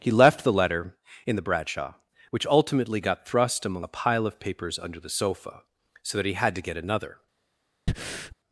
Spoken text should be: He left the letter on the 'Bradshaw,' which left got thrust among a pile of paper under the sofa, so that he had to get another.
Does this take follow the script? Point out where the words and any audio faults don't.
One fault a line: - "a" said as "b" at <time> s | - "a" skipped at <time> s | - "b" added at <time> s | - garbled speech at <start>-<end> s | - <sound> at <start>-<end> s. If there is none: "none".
- "on" said as "in" at 1.3 s
- "left" said as "ultimately" at 2.5 s
- "paper" said as "papers" at 4.4 s
- breath at 7.9-8.4 s